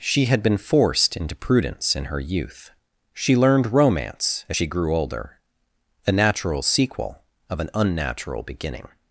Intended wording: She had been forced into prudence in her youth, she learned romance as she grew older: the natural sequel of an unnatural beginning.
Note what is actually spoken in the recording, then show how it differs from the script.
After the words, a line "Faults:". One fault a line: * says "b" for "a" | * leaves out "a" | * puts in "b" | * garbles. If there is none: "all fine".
She had been forced into prudence in her youth, she learned romance as she grew older: a natural sequel of an unnatural beginning.
Faults:
* says "a" for "the"